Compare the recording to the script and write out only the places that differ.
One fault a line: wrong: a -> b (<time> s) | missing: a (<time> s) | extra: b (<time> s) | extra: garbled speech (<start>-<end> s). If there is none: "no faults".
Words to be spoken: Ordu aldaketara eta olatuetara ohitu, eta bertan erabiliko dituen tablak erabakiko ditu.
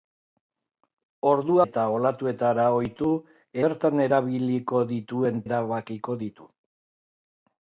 missing: aldaketara (1.6 s)
missing: eta (3.1 s)
missing: tablak (5.5 s)